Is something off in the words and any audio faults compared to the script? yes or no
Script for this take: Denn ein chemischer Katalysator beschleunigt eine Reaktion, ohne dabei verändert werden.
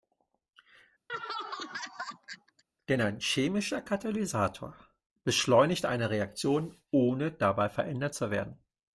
yes